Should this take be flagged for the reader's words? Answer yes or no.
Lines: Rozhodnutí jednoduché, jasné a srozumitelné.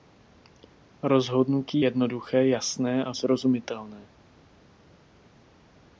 no